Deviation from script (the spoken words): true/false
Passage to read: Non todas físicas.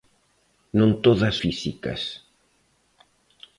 false